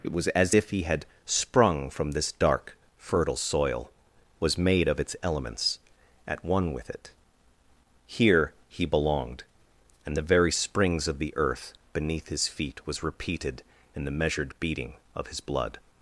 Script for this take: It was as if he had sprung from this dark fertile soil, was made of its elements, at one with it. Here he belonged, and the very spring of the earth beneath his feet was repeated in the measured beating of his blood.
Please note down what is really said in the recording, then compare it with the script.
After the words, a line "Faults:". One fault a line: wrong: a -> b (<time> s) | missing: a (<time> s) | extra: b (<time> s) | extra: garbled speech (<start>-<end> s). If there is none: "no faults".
It was as if he had sprung from this dark fertile soil, was made of its elements, at one with it. Here he belonged, and the very springs of the earth beneath his feet was repeated in the measured beating of his blood.
Faults:
wrong: spring -> springs (10.5 s)